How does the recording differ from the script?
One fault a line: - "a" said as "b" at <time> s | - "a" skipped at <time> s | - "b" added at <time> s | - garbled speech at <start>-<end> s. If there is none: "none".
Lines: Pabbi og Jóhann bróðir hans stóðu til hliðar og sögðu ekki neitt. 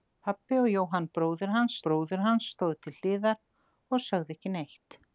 - "bróðir hans" added at 1.9 s